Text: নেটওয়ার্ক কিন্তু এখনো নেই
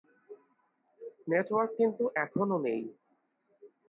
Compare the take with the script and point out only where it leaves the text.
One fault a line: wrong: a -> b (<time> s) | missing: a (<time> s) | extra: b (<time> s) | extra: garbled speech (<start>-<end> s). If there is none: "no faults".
no faults